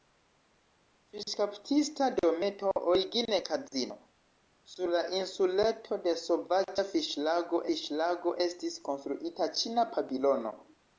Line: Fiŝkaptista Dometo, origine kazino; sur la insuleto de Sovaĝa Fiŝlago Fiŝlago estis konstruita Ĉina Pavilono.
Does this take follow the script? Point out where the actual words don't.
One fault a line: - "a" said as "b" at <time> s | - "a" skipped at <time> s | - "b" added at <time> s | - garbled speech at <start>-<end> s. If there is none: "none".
none